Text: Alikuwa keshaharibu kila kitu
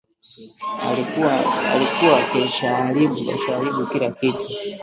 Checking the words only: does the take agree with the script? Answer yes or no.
yes